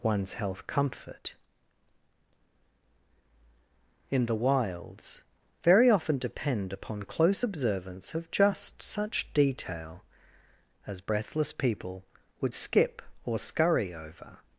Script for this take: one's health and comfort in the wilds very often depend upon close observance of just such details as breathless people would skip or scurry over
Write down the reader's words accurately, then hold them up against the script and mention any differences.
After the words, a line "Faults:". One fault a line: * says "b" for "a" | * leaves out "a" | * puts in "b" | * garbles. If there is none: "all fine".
one's health comfort in the wilds very often depend upon close observance of just such detail as breathless people would skip or scurry over
Faults:
* leaves out "and"
* says "detail" for "details"